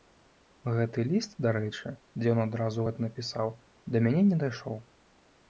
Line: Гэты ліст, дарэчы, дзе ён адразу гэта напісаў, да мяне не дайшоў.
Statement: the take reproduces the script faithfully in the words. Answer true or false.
true